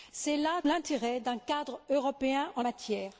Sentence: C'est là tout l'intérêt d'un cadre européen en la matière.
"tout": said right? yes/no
no